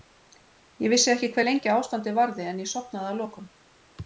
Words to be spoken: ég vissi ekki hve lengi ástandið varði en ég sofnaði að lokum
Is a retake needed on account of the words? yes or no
no